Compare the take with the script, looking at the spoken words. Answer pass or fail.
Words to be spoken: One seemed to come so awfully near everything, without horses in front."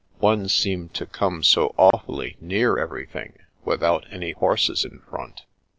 fail